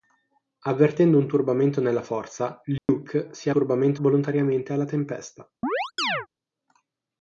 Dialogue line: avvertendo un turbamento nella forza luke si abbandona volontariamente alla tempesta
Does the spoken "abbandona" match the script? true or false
false